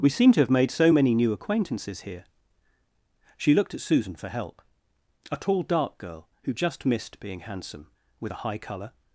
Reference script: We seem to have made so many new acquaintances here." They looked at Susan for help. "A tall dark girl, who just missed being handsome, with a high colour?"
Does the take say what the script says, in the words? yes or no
no